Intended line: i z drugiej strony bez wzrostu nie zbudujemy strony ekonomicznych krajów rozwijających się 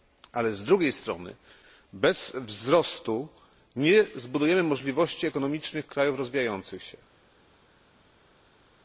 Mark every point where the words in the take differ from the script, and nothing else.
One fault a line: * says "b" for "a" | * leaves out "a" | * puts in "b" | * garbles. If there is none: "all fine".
* says "ale" for "i"
* says "możliwości" for "strony"